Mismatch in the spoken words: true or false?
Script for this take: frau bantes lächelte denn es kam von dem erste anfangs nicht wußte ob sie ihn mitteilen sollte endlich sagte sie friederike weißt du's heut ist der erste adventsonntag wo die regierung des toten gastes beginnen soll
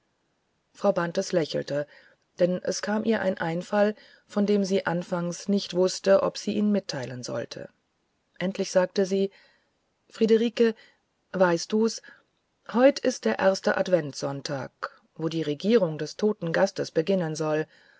true